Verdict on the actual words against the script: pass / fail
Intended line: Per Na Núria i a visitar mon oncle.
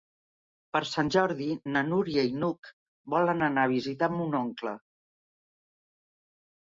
fail